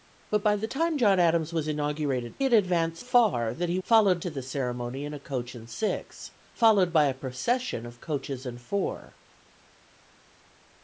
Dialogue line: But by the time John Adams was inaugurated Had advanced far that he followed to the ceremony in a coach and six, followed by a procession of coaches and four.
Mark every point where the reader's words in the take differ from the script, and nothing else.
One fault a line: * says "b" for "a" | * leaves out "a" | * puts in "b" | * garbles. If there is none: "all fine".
all fine